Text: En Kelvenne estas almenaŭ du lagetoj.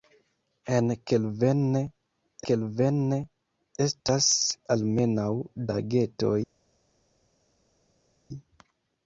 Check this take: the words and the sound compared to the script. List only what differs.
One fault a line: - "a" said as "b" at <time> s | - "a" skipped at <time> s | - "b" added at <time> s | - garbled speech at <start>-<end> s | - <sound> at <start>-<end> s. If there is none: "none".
- "Kelvenne" added at 2.5 s
- "du" skipped at 5.3 s